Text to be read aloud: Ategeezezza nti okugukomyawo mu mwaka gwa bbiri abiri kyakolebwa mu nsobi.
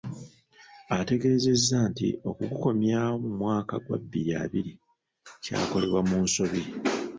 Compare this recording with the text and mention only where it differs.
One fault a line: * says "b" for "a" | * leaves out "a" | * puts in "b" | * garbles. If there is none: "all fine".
all fine